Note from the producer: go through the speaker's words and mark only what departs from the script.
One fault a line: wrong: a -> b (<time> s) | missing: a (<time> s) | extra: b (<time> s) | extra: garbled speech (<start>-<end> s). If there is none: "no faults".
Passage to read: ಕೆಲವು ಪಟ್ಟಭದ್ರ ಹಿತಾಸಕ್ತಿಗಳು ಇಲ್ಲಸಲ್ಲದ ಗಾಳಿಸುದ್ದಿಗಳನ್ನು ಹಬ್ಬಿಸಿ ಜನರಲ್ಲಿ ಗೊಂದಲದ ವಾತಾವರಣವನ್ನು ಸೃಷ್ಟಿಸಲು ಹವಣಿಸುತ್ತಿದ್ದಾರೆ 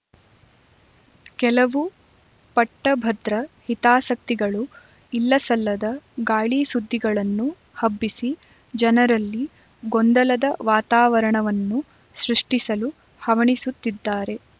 no faults